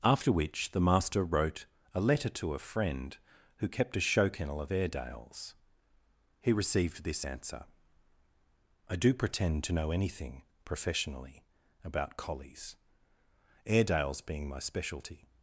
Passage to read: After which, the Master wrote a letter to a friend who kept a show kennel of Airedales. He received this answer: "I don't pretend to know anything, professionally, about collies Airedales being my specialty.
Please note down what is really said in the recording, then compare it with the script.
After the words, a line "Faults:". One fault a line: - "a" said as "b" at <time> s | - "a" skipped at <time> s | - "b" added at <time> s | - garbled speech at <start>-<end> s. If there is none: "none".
After which, the Master wrote a letter to a friend who kept a show kennel of Airedales. He received this answer: "I do pretend to know anything, professionally, about collies Airedales being my specialty.
Faults:
- "don't" said as "do" at 8.9 s